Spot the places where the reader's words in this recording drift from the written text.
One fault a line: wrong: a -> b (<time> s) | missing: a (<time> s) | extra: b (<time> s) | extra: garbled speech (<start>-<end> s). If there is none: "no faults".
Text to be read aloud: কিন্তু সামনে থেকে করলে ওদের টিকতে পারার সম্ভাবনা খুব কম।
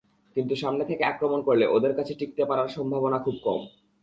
extra: আক্রমণ (1.0 s)
extra: কাছে (1.9 s)